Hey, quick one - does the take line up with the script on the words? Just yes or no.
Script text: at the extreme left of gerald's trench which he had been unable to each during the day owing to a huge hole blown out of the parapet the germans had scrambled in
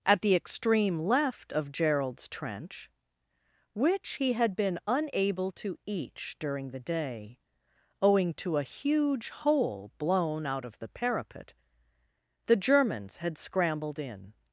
yes